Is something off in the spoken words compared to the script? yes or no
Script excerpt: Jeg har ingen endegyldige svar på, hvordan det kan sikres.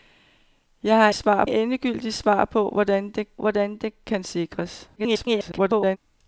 yes